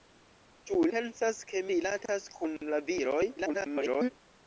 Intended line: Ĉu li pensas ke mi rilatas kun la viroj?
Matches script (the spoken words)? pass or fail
fail